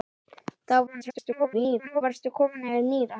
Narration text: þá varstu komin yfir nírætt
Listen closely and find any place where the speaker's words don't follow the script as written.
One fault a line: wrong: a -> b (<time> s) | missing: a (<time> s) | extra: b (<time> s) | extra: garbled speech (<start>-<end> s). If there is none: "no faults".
extra: garbled speech (0.9-2.0 s)